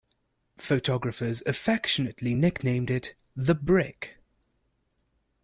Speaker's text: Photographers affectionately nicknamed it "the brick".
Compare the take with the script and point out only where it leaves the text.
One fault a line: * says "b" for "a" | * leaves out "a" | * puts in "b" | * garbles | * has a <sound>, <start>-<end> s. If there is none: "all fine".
all fine